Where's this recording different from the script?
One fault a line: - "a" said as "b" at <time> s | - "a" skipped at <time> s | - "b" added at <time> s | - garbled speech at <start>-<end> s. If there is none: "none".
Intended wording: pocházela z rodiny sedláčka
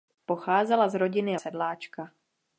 none